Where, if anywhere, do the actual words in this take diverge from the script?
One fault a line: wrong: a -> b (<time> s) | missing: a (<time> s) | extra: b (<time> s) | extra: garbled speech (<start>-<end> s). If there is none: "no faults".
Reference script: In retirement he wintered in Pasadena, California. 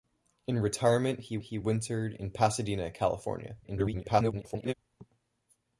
extra: he (1.4 s)
extra: garbled speech (3.6-4.7 s)